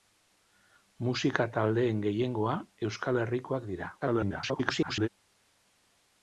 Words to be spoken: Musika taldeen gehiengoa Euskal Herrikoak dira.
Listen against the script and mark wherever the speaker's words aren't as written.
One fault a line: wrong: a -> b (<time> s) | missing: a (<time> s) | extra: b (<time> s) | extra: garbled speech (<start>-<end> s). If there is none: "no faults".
extra: garbled speech (4.0-5.1 s)